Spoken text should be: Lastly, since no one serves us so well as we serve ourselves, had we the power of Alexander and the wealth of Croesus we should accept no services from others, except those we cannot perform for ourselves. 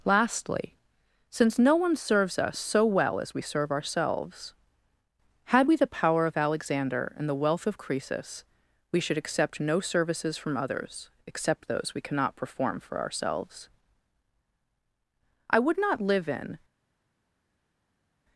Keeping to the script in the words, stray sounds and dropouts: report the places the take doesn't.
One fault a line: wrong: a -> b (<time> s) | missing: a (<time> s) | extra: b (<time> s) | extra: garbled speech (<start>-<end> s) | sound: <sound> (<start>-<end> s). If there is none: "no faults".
extra: I would not live in (15.5 s)